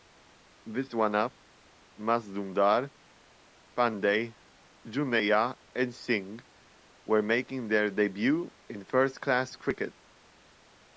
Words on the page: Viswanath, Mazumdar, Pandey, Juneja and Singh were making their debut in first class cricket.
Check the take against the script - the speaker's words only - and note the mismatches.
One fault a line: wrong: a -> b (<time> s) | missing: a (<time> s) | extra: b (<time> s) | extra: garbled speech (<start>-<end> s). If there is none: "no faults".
no faults